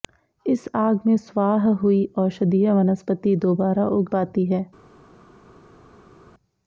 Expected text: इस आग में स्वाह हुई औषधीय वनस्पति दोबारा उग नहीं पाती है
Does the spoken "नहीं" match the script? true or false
false